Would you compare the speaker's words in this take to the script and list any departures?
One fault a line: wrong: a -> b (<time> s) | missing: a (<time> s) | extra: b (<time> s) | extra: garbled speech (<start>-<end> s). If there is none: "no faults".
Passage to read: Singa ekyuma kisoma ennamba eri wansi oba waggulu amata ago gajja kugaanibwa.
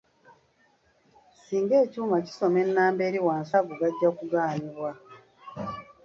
missing: oba waggulu amata (3.5 s)